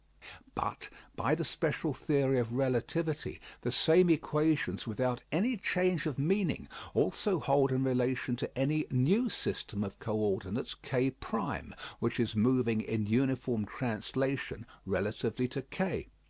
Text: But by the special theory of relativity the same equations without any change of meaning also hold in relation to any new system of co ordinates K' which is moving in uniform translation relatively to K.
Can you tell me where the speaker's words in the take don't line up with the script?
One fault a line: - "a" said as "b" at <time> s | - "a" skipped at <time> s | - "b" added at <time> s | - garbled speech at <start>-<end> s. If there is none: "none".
none